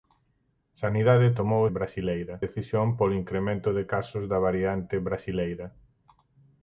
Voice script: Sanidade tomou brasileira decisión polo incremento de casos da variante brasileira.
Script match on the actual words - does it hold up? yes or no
yes